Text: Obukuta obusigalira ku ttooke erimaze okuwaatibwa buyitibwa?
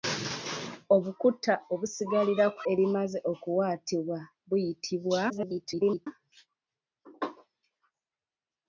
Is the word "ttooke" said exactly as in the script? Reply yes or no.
no